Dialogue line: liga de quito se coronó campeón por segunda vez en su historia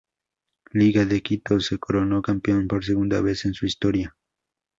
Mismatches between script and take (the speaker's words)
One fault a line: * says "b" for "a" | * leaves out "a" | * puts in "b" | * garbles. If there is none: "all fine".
all fine